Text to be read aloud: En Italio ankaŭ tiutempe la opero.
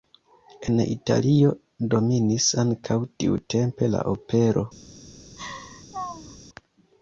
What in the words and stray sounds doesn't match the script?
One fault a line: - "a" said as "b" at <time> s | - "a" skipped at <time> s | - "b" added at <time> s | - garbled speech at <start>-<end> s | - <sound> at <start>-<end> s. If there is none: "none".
- "dominis" added at 1.9 s
- laugh at 5.4-6.4 s